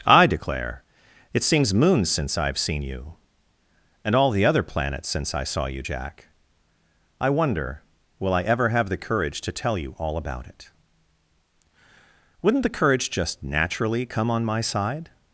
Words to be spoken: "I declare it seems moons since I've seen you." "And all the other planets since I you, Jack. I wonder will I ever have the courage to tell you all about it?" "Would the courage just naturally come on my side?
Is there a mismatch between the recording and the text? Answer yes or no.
yes